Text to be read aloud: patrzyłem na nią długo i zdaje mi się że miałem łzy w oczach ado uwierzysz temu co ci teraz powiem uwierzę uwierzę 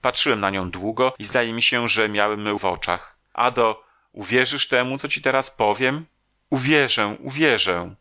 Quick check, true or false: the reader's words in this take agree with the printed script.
false